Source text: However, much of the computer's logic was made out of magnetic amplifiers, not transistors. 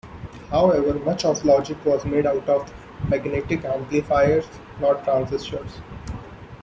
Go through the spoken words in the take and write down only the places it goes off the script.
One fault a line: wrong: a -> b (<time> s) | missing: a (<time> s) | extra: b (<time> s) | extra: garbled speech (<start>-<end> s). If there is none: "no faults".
missing: the computer's (1.4 s)